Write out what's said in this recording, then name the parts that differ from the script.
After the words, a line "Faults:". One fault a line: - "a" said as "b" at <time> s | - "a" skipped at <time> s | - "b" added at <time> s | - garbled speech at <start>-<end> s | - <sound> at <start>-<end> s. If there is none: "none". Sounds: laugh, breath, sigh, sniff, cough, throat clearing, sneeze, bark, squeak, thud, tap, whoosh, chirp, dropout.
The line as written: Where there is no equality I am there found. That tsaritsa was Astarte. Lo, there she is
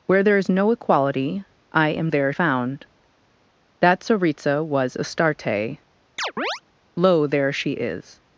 Where there is no equality I am there found. That tsaritsa was Astarte. Lo, there she is
Faults:
- chirp at 6.2-6.6 s